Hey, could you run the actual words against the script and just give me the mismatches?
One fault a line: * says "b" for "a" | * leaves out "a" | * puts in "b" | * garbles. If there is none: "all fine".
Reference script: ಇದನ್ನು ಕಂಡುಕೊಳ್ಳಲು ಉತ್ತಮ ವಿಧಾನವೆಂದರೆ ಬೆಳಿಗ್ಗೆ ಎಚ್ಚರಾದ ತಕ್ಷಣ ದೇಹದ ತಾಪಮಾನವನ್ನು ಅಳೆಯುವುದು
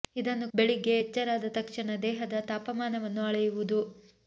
* leaves out "ಕಂಡುಕೊಳ್ಳಲು ಉತ್ತಮ ವಿಧಾನವೆಂದರೆ"